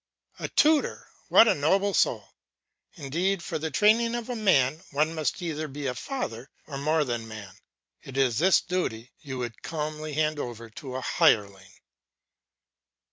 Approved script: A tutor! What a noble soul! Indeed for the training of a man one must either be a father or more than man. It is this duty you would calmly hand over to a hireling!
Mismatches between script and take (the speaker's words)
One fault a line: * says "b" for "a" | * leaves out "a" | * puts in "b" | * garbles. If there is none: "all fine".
all fine